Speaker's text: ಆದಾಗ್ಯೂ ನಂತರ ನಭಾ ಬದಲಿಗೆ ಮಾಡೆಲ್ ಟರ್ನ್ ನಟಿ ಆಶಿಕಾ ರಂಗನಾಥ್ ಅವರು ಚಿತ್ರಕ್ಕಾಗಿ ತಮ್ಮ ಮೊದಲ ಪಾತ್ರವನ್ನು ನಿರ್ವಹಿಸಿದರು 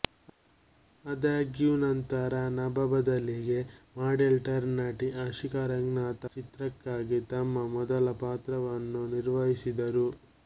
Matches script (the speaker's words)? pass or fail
fail